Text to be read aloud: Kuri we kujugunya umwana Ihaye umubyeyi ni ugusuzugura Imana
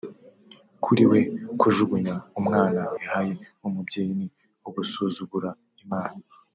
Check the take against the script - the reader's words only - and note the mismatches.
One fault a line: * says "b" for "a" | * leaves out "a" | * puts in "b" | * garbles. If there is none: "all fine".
all fine